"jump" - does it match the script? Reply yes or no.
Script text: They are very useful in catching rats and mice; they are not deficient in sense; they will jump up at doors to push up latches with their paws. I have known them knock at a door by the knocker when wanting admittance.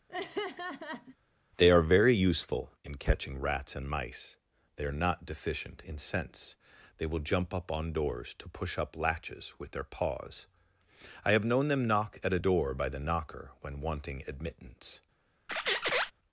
yes